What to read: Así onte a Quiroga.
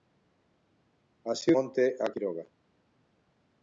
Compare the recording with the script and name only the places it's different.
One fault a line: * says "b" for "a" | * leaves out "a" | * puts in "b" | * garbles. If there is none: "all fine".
all fine